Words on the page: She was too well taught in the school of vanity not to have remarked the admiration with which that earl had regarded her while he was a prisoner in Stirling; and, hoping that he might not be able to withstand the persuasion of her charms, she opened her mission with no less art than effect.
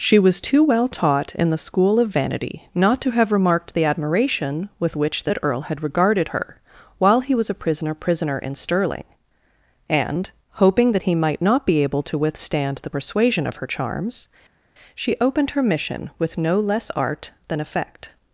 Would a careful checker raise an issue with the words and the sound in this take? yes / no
yes